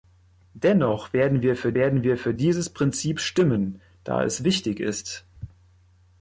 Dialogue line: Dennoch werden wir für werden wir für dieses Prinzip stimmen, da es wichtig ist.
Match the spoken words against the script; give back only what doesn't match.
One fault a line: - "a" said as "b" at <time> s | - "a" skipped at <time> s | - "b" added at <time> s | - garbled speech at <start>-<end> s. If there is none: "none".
none